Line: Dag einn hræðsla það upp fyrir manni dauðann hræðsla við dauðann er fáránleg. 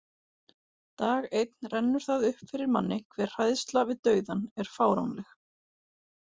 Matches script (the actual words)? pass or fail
fail